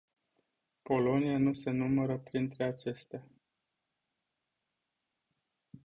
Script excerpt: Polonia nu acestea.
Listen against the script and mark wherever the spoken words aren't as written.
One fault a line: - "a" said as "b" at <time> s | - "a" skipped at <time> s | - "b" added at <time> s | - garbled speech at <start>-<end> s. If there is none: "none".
- "se numără printre" added at 1.5 s